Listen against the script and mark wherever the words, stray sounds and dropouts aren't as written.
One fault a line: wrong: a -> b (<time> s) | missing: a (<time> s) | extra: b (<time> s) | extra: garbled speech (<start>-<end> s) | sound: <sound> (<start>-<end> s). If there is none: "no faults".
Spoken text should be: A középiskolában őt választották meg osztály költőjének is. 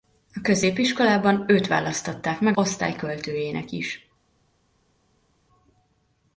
no faults